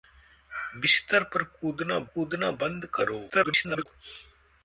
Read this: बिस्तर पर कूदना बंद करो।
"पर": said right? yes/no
yes